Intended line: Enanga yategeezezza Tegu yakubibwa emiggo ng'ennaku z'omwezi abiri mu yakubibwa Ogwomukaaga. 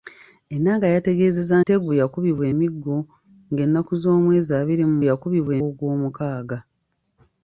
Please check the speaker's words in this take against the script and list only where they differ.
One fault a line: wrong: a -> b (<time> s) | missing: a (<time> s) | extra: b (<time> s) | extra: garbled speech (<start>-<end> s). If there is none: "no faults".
no faults